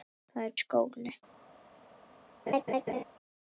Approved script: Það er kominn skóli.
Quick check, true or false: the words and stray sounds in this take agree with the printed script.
false